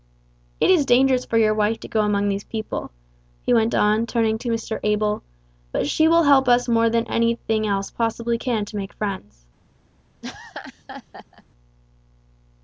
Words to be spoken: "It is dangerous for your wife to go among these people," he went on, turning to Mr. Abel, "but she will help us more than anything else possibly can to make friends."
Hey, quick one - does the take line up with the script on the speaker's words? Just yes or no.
yes